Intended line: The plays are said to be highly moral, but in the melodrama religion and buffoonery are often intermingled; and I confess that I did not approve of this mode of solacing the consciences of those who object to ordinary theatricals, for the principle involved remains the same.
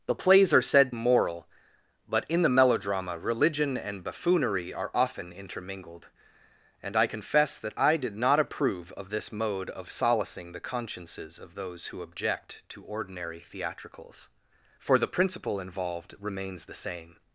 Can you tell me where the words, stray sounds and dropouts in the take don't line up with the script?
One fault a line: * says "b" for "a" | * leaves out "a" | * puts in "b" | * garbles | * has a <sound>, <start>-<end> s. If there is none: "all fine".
* leaves out "to be highly"